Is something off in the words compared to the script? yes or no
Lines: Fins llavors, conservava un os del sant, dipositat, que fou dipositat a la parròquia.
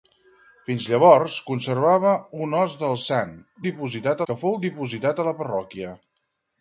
no